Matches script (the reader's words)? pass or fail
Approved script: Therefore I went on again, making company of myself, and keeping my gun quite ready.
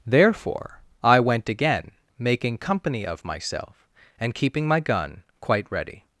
fail